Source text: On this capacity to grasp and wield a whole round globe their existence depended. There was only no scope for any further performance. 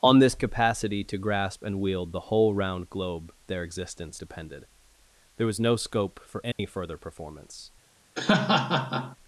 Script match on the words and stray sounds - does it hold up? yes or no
no